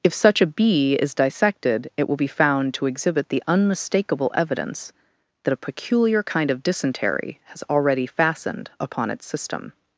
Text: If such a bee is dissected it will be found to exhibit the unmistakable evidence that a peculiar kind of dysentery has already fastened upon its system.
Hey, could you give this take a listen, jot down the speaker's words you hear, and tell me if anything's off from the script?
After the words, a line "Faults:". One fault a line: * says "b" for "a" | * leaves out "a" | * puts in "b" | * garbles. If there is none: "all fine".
If such a bee is dissected it will be found to exhibit the unmistakable evidence that a peculiar kind of dysentery has already fastened upon its system.
Faults:
all fine